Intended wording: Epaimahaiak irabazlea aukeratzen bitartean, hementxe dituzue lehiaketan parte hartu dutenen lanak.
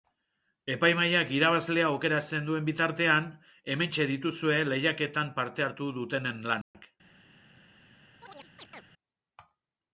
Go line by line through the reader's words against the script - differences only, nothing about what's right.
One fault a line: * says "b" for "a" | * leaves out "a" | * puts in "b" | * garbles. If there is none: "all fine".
* puts in "duen"